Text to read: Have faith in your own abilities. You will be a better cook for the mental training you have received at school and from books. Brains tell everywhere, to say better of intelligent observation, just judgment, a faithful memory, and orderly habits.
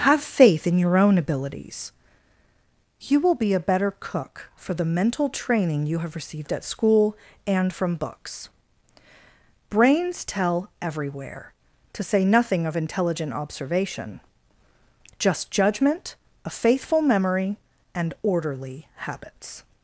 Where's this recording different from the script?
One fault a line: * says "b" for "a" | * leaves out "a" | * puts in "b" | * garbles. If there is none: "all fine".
* says "nothing" for "better"